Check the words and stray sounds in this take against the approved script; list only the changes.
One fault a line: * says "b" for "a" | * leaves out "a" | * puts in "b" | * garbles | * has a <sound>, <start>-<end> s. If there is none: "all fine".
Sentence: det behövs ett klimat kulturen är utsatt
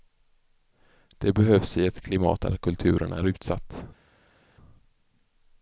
* puts in "i"
* puts in "där"